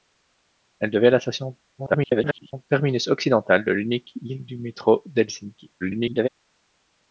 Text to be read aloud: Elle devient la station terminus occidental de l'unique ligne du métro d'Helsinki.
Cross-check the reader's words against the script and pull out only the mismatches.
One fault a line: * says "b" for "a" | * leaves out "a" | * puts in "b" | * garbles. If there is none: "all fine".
* garbles
* garbles